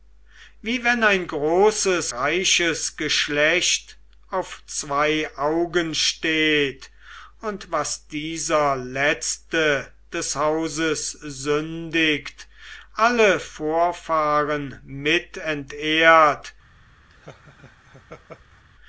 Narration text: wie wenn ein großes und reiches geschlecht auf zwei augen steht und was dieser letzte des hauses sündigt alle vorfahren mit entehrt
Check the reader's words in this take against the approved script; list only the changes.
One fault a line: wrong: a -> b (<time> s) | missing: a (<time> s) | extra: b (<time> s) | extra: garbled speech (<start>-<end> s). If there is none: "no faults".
missing: und (2.1 s)